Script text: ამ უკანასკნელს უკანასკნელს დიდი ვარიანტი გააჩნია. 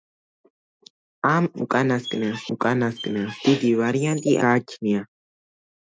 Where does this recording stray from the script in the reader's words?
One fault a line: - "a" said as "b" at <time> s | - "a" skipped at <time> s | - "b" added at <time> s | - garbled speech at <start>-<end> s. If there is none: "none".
none